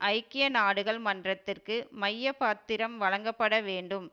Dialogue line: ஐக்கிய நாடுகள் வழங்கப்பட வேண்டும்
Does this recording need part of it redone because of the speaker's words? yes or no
yes